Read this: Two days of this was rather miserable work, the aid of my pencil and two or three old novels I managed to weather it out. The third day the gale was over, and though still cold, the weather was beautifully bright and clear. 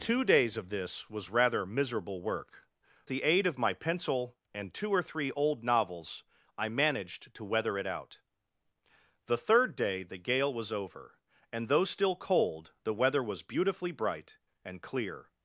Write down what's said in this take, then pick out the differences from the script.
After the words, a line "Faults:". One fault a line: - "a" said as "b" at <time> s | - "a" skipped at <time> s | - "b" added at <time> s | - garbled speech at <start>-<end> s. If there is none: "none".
Two days of this was rather miserable work, the aid of my pencil and two or three old novels I managed to weather it out. The third day the gale was over, and though still cold, the weather was beautifully bright and clear.
Faults:
none